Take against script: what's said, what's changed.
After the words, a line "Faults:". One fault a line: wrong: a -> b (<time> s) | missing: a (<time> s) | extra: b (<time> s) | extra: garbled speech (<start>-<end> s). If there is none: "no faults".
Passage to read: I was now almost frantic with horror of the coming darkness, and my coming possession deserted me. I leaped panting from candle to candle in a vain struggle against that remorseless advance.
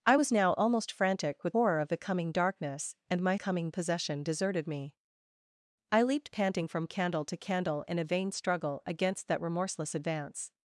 I was now almost frantic with horror of the coming darkness, and my coming possession deserted me. I leaped panting from candle to candle in a vain struggle against that remorseless advance.
Faults:
no faults